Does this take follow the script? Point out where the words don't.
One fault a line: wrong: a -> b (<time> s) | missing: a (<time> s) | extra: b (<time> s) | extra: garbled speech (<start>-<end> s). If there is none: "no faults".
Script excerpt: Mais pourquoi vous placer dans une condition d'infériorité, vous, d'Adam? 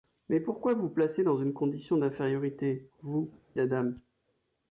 no faults